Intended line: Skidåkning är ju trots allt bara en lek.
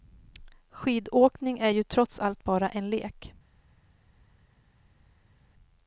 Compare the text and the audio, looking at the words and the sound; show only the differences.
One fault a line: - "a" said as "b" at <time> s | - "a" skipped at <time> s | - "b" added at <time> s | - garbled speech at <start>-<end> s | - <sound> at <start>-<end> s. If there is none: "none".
none